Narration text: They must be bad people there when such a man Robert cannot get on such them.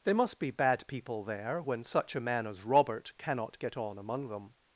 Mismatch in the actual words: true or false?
true